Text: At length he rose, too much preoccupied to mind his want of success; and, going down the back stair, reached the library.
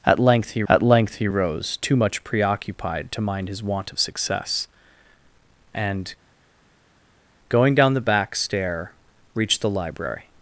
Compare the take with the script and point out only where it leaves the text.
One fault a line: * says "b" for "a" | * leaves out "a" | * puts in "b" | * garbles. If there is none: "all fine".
* puts in "at length he"